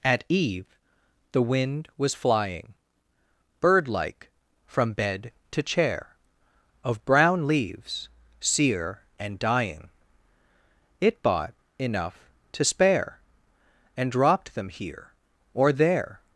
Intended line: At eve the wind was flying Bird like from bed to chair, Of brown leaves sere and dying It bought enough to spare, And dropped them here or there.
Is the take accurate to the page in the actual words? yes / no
yes